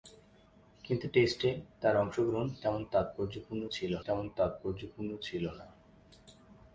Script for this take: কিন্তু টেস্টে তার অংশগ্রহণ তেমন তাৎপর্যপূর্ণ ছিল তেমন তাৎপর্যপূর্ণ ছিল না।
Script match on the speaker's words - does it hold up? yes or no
yes